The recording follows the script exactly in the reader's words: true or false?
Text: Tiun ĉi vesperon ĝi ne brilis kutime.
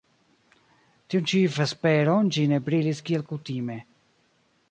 false